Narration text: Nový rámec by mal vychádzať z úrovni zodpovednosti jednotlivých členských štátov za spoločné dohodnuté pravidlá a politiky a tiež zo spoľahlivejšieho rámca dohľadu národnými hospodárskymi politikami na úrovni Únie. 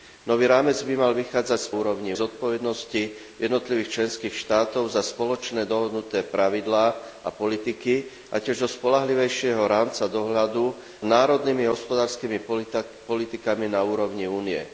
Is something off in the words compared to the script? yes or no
no